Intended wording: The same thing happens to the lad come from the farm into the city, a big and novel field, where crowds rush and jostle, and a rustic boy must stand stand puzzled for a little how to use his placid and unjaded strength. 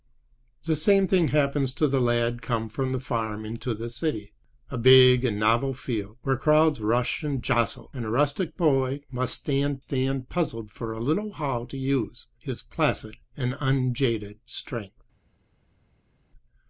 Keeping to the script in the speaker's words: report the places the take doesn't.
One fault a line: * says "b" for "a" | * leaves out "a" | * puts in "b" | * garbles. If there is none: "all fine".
all fine